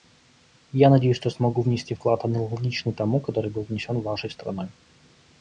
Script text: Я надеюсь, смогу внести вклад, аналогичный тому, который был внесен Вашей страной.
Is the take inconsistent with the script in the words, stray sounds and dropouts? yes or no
yes